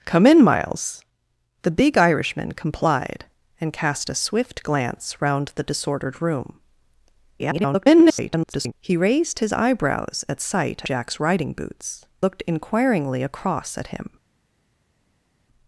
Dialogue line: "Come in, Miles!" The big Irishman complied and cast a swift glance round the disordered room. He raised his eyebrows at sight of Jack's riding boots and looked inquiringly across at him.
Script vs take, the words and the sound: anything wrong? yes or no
yes